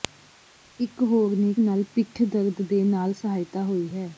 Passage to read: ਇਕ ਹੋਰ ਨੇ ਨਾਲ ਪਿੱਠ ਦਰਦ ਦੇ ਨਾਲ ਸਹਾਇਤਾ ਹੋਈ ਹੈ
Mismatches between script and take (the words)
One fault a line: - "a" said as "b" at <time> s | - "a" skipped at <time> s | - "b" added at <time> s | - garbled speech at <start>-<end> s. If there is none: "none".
none